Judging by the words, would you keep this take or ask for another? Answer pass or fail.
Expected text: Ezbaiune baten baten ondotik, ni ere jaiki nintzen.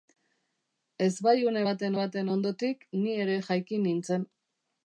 pass